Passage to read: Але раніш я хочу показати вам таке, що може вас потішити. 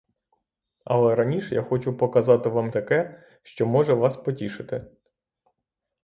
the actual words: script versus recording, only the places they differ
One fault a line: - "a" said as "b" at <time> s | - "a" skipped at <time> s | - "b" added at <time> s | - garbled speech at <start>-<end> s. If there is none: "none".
none